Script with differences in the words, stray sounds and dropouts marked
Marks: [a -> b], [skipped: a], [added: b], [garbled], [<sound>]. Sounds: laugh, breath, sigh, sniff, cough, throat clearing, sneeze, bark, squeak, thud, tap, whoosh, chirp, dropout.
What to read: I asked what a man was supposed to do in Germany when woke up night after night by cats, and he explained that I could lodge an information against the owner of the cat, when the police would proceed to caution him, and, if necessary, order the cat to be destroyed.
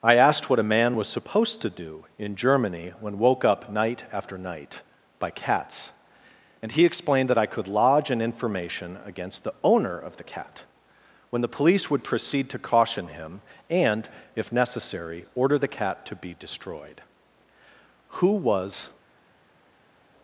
I asked what a man was supposed to do in Germany when woke up night after night by cats, and he explained that I could lodge an information against the owner of the cat, when the police would proceed to caution him, and, if necessary, order the cat to be destroyed. [added: Who was]